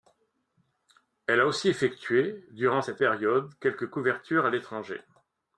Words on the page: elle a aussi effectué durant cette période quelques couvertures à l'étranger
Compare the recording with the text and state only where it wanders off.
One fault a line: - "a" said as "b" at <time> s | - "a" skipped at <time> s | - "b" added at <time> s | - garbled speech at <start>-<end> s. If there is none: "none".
none